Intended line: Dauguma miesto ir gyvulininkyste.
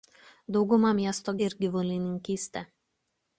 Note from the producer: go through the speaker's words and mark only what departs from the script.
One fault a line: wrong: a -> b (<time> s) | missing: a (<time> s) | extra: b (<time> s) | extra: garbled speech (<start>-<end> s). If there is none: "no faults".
no faults